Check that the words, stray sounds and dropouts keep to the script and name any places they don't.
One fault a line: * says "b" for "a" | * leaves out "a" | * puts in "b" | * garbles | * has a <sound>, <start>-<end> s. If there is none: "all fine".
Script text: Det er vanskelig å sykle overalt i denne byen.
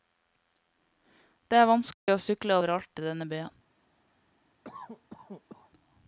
* has a dropout, 1.9-2.1 s
* has a cough, 4.6-5.7 s